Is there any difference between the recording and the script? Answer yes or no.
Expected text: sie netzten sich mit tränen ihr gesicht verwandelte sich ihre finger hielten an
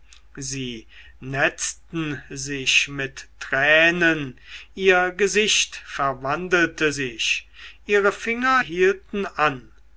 no